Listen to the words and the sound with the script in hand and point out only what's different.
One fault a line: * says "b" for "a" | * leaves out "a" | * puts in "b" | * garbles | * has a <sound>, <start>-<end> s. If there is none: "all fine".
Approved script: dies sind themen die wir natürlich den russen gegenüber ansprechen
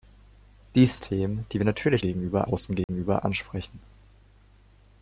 * leaves out "sind"
* says "gegenüber" for "den"
* has a dropout, 2.8-2.9 s